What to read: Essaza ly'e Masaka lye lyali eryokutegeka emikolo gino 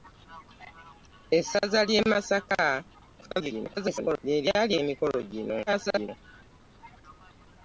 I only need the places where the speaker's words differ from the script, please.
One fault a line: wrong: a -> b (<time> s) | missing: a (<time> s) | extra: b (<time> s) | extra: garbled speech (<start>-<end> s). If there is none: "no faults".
extra: garbled speech (3.2-4.2 s)
missing: eryokutegeka (4.7 s)
extra: garbled speech (5.7-6.1 s)